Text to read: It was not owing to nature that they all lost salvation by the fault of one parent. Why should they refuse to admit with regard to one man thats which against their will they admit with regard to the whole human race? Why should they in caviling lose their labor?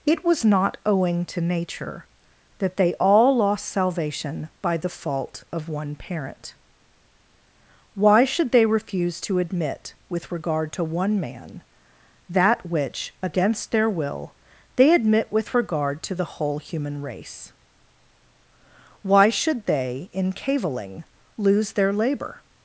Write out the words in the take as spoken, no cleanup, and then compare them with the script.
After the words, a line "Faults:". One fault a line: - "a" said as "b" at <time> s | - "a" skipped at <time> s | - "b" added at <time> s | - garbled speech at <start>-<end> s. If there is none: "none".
It was not owing to nature that they all lost salvation by the fault of one parent. Why should they refuse to admit with regard to one man that which against their will they admit with regard to the whole human race? Why should they in caviling lose their labor?
Faults:
- "thats" said as "that" at 12.3 s